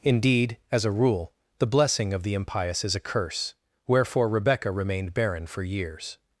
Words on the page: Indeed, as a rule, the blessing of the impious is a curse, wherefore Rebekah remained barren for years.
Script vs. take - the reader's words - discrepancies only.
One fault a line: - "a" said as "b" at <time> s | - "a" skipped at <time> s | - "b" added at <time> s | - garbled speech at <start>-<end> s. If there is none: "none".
none